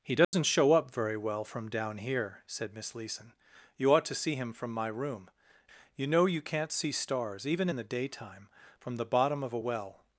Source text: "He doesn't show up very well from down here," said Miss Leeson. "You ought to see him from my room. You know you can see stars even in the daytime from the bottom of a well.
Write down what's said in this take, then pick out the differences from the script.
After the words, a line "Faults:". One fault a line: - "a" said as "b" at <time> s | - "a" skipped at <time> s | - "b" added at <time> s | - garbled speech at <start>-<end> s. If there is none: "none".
"He doesn't show up very well from down here," said Miss Leeson. "You ought to see him from my room. You know you can't see stars even in the daytime from the bottom of a well.
Faults:
- "can" said as "can't" at 6.4 s